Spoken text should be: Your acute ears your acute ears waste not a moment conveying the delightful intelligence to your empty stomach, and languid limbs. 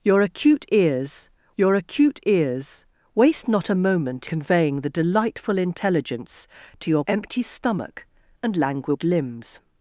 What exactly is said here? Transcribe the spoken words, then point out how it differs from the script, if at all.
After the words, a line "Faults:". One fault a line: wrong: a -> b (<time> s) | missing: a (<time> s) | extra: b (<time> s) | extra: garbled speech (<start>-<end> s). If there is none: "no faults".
Your acute ears your acute ears waste not a moment conveying the delightful intelligence to your empty stomach, and languid limbs.
Faults:
no faults